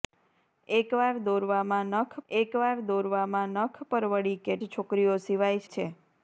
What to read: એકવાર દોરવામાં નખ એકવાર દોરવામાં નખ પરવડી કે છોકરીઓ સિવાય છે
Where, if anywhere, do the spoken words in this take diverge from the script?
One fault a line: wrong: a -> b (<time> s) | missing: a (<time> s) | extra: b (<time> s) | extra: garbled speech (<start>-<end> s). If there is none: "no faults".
no faults